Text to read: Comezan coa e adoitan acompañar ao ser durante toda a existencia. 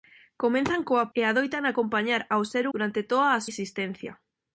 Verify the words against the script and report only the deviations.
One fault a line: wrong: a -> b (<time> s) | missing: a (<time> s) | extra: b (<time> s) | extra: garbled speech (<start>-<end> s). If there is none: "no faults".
no faults